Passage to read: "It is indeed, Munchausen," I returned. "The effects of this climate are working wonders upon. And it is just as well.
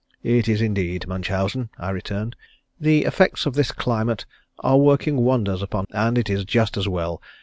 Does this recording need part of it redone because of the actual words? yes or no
no